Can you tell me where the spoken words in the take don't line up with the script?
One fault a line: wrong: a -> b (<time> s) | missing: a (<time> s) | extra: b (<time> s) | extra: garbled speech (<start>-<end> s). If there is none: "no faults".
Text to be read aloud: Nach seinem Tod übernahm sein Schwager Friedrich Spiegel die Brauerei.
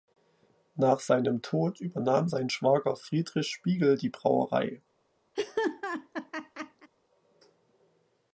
no faults